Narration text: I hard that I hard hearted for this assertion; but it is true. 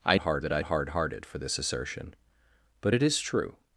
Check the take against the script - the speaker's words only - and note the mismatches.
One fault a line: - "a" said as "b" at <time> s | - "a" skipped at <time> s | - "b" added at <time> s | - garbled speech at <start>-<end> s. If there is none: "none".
none